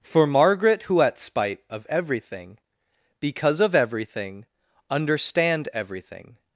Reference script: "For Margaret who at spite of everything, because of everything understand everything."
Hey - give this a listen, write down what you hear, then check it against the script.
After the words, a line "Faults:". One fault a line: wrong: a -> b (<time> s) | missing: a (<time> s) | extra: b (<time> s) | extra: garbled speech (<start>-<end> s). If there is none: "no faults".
"For Margaret who at spite of everything, because of everything understand everything."
Faults:
no faults